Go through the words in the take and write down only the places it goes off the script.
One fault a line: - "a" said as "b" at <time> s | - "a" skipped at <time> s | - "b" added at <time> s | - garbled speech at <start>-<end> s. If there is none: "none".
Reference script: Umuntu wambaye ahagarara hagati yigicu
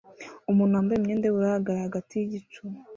- "imyenda yubururu" added at 1.0 s